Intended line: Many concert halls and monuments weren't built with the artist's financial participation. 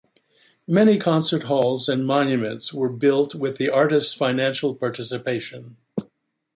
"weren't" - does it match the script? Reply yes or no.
no